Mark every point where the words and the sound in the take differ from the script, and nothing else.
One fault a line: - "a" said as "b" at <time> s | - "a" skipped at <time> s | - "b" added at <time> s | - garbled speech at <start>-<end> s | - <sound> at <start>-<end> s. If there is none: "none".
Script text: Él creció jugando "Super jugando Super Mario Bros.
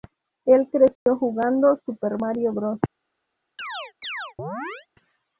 - dropout at 1.0-1.1 s
- "jugando Super" skipped at 2.2 s
- chirp at 3.6-4.9 s